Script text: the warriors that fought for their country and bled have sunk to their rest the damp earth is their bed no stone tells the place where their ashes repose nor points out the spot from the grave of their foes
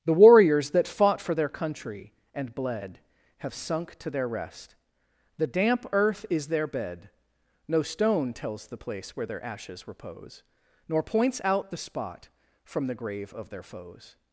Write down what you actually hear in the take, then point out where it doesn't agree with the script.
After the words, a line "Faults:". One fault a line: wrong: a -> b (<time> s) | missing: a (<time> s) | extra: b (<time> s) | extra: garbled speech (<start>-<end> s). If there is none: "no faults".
the warriors that fought for their country and bled have sunk to their rest the damp earth is their bed no stone tells the place where their ashes repose nor points out the spot from the grave of their foes
Faults:
no faults